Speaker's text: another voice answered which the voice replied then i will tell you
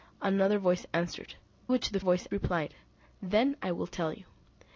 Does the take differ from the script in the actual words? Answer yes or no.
no